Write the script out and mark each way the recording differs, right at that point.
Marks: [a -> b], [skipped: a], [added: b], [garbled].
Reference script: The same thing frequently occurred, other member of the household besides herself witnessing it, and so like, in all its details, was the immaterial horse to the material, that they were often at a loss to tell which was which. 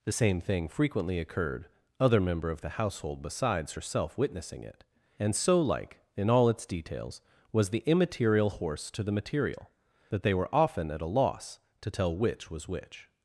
The same thing frequently occurred, other member of the household besides herself witnessing it, and so like, in all its details, was the immaterial horse to the material, that they were often at a loss to tell which was which.